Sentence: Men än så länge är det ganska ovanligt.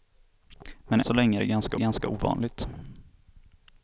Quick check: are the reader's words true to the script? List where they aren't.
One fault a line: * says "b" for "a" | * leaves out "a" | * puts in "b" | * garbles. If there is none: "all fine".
* leaves out "än"
* puts in "ganska"